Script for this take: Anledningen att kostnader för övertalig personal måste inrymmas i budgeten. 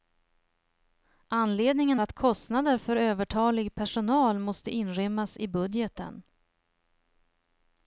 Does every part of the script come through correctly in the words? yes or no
yes